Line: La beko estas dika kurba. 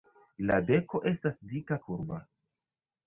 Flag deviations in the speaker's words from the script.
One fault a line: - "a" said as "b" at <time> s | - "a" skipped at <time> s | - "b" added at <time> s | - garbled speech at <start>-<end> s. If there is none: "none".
none